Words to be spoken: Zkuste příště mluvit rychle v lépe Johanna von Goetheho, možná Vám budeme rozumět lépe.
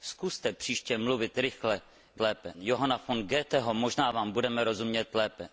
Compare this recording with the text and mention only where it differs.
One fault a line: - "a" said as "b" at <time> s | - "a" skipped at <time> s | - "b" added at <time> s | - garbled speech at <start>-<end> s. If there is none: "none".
none